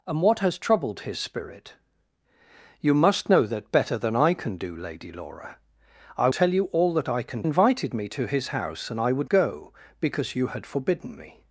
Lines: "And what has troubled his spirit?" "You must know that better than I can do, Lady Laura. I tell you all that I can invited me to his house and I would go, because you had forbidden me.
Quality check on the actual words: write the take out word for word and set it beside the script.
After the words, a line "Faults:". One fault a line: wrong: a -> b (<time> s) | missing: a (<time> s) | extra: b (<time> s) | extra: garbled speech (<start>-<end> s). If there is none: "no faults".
"And what has troubled his spirit?" "You must know that better than I can do, Lady Laura. I tell you all that I can invited me to his house and I would go, because you had forbidden me.
Faults:
no faults